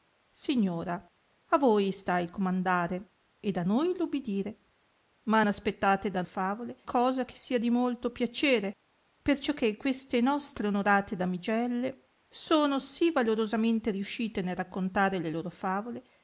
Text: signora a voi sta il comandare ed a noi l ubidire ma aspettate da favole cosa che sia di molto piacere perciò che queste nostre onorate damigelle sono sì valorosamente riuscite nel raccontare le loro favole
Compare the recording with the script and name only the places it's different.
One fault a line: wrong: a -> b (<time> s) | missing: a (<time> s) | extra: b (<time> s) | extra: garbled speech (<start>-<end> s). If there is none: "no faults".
no faults